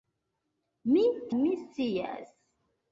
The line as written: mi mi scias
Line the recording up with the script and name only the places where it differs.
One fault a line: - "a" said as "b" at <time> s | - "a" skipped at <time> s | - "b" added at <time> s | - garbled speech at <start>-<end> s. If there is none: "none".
none